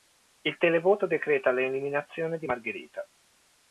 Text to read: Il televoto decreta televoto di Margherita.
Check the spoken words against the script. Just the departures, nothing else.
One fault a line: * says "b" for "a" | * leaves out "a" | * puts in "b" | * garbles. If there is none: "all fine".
* says "l'eliminazione" for "televoto"